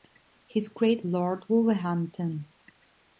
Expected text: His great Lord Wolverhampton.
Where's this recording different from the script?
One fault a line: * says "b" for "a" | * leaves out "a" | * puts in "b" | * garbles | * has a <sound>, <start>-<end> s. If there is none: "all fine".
all fine